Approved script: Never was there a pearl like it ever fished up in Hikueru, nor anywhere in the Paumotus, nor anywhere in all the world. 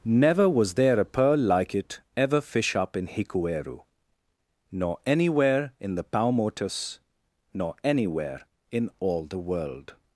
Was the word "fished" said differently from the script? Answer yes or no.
yes